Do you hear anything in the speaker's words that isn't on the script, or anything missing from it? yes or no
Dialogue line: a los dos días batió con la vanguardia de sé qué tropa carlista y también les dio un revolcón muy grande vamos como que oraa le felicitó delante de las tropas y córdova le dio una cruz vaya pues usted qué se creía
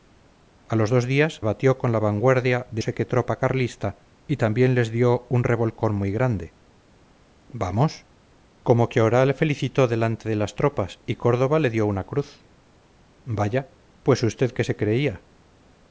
no